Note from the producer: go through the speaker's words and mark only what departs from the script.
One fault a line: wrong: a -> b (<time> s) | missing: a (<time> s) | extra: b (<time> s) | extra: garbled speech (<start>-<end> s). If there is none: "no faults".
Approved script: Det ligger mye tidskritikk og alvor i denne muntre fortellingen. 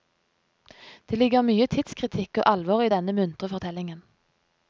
no faults